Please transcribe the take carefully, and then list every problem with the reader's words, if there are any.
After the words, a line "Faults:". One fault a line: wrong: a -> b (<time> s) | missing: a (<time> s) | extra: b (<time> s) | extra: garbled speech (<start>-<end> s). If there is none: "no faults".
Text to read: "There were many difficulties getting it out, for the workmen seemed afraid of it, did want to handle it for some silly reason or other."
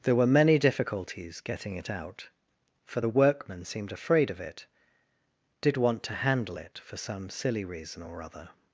"There were many difficulties getting it out, for the workmen seemed afraid of it, did want to handle it for some silly reason or other."
Faults:
no faults